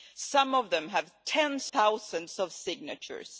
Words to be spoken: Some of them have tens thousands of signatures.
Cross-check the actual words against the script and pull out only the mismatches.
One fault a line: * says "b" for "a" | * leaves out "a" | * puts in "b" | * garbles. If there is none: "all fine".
all fine